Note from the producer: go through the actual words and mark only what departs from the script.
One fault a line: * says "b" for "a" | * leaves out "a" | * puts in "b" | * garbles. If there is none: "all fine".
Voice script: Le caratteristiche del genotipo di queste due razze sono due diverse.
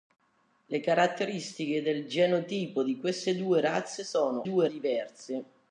all fine